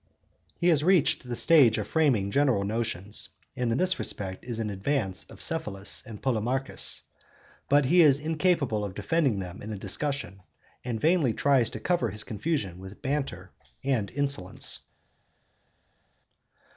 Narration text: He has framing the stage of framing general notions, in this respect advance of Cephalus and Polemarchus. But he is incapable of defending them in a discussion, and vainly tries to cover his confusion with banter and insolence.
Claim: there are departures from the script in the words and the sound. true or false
true